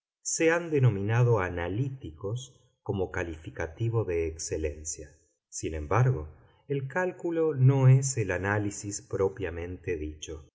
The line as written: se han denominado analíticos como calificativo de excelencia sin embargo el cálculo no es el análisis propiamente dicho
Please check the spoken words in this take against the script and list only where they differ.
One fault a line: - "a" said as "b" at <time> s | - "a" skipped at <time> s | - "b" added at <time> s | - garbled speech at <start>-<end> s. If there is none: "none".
none